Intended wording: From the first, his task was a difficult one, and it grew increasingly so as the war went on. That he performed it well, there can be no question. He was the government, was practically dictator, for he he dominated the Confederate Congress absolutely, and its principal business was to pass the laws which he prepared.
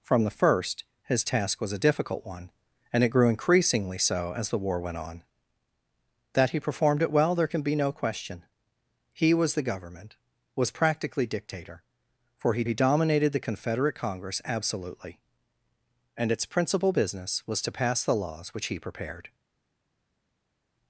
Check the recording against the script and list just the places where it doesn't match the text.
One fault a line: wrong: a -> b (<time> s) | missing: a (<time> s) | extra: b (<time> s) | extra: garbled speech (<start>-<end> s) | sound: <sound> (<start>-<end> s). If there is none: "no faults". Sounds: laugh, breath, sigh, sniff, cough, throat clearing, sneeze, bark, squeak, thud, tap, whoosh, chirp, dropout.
no faults